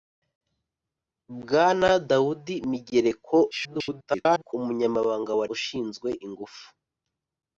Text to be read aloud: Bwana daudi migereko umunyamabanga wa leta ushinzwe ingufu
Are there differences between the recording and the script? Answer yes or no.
yes